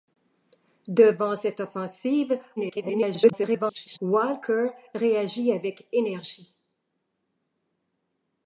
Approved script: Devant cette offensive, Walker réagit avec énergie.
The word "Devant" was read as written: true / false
true